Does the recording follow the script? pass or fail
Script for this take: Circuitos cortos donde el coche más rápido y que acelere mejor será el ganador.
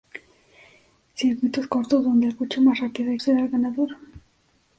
fail